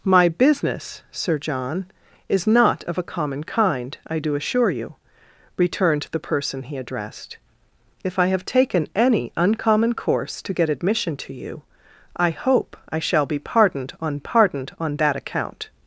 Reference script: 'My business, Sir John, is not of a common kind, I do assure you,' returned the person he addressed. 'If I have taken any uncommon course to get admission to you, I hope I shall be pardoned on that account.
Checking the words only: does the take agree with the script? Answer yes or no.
no